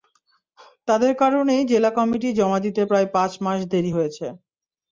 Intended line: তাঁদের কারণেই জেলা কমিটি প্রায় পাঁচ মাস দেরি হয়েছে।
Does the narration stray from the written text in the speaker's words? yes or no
yes